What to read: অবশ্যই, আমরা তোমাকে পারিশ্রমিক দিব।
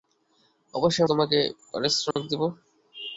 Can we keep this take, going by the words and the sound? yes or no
no